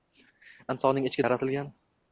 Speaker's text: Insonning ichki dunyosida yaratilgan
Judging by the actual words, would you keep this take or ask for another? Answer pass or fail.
fail